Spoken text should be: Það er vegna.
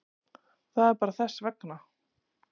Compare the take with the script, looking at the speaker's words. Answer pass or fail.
fail